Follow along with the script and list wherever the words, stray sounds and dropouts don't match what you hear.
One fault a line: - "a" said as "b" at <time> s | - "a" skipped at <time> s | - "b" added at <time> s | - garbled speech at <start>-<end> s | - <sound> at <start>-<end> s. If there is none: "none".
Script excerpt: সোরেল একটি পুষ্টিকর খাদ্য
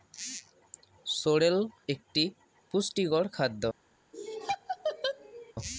- laugh at 4.1-5.5 s